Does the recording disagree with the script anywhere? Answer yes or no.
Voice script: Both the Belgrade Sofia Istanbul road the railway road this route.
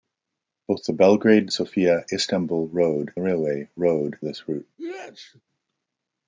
no